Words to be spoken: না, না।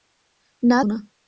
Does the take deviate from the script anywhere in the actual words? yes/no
no